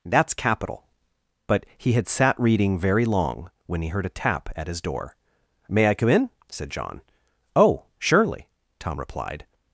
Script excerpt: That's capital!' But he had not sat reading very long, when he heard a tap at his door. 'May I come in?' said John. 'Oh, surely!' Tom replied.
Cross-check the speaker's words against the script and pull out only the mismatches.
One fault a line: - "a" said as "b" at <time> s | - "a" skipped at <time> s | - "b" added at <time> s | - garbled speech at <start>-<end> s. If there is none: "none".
- "not" skipped at 2.1 s